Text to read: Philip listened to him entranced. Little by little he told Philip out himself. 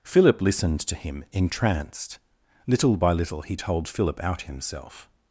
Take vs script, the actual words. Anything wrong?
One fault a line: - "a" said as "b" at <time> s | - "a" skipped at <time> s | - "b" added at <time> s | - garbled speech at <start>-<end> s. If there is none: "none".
none